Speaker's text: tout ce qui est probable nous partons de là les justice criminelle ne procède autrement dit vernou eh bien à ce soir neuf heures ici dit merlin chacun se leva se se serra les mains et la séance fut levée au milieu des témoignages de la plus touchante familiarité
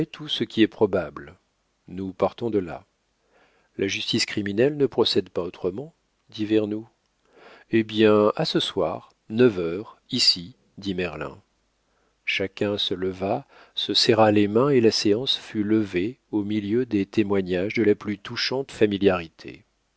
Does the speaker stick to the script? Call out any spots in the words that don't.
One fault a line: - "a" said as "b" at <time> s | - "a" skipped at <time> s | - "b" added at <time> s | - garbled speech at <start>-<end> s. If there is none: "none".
- "les" said as "la" at 3.8 s
- "pas" added at 5.3 s
- "se" skipped at 13.9 s